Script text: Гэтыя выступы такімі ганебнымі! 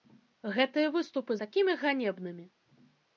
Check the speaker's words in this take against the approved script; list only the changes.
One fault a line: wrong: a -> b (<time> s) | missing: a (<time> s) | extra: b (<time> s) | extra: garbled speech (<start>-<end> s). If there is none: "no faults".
no faults